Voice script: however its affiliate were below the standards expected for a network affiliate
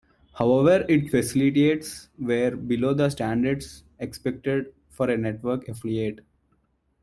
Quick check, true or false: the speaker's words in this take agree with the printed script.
false